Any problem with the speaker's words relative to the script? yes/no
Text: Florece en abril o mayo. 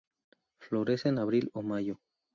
no